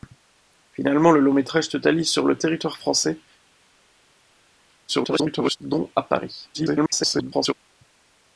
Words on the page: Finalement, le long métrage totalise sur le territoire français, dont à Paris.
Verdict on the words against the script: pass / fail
fail